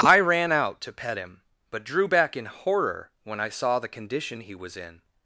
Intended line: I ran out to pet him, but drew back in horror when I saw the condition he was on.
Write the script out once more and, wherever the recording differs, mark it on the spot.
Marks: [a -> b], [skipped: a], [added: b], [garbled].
I ran out to pet him, but drew back in horror when I saw the condition he was [on. -> in]